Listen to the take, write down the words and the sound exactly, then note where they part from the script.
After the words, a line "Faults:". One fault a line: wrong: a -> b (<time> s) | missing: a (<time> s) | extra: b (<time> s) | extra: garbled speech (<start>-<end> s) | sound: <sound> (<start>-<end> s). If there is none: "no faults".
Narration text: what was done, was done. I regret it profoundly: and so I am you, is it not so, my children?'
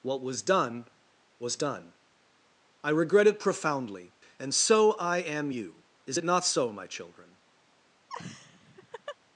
what was done, was done. I regret it profoundly: and so I am you, is it not so, my children?'
Faults:
sound: laugh (8.1-9.2 s)